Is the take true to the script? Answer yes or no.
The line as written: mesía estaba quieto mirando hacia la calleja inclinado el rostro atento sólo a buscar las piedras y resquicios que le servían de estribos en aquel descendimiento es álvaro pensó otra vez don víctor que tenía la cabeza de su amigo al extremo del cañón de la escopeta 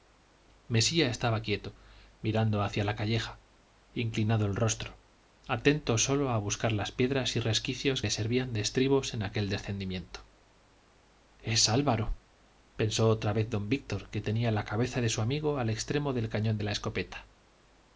no